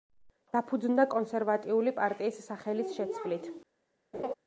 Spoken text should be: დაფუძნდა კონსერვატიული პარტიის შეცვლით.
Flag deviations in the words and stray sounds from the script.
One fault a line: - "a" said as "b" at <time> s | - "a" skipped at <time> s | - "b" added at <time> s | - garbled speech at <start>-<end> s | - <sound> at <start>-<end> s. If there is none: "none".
- "სახელის" added at 2.5 s
- laugh at 4.1-4.3 s